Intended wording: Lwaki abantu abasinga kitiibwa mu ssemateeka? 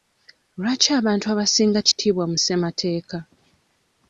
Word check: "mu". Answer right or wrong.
right